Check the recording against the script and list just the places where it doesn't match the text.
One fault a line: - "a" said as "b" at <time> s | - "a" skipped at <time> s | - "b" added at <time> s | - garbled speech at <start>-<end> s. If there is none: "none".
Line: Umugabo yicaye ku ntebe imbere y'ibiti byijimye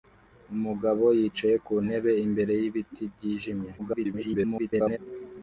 - garbled speech at 3.8-5.0 s